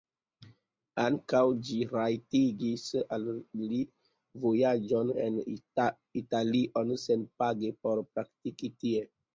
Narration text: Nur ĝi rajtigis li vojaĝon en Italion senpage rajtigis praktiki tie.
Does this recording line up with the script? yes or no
no